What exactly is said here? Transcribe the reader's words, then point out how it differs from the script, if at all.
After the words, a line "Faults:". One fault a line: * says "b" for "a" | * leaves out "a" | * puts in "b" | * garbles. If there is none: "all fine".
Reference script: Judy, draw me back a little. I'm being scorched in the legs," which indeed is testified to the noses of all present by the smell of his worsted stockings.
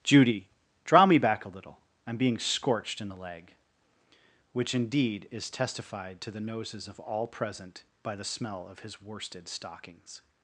Judy, draw me back a little. I'm being scorched in the leg," which indeed is testified to the noses of all present by the smell of his worsted stockings.
Faults:
* says "leg" for "legs"